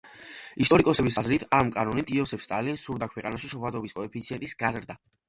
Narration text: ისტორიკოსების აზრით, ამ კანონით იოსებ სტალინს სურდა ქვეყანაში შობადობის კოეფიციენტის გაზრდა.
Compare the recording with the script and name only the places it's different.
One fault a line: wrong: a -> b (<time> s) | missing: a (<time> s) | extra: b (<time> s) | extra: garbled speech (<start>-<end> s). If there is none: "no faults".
no faults